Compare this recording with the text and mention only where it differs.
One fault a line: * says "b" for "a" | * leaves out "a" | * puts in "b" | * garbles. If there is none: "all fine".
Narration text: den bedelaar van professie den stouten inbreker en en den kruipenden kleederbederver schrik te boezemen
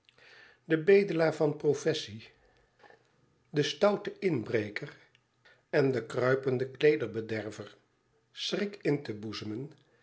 * leaves out "en"
* puts in "in"